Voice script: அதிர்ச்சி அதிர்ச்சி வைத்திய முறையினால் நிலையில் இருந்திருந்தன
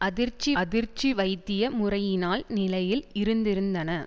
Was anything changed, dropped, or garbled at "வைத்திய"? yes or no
no